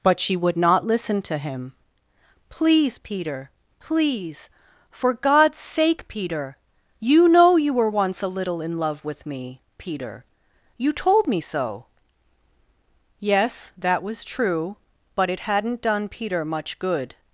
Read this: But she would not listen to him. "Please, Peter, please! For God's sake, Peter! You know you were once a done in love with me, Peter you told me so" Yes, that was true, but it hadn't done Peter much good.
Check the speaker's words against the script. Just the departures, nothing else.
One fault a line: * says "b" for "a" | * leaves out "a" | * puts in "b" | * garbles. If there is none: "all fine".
* says "little" for "done"